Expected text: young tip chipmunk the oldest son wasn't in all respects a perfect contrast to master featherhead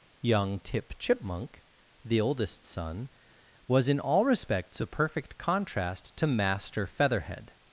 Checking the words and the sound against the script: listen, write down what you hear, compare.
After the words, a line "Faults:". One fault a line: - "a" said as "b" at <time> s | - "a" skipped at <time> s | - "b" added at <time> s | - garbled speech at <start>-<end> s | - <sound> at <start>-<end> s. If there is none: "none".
young tip chipmunk the oldest son was in all respects a perfect contrast to master featherhead
Faults:
- "wasn't" said as "was" at 3.7 s